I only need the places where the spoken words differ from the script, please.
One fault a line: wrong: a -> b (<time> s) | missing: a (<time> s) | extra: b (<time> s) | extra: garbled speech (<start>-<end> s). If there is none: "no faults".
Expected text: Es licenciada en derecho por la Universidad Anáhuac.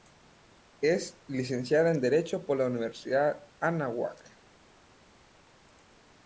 no faults